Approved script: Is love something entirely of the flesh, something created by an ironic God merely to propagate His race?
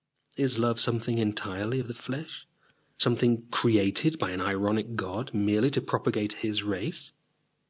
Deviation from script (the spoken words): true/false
false